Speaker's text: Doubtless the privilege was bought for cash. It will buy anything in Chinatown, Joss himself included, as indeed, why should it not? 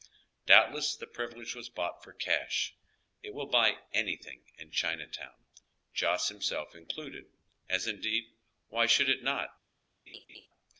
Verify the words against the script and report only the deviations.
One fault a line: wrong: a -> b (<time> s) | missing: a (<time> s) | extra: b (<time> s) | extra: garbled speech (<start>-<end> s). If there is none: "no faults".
no faults